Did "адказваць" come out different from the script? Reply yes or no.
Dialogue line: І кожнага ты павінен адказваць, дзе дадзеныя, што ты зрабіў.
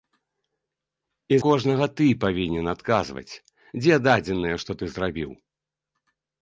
no